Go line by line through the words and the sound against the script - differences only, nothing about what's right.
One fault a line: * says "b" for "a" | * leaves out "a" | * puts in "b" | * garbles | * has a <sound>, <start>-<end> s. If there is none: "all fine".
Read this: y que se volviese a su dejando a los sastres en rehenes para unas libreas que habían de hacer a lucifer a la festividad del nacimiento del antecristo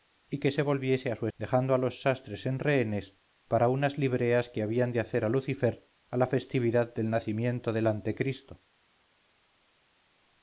all fine